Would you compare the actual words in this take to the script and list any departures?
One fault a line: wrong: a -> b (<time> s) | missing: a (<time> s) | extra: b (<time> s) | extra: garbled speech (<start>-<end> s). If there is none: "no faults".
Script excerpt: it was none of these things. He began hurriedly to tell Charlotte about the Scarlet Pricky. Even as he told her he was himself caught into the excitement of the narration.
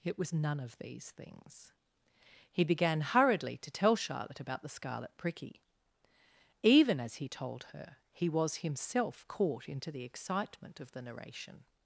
no faults